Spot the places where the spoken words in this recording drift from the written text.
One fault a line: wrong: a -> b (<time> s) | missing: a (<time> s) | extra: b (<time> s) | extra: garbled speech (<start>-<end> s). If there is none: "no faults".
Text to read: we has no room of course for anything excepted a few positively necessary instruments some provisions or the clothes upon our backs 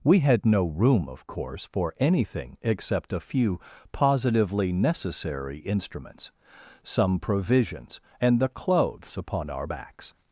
wrong: has -> had (0.2 s)
wrong: excepted -> except (2.6 s)
wrong: or -> and (8.2 s)